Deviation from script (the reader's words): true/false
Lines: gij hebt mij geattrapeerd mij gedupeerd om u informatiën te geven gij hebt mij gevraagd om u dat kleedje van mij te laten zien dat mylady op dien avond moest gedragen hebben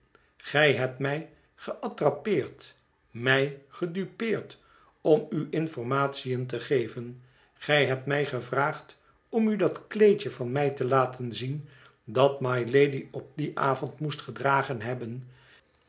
false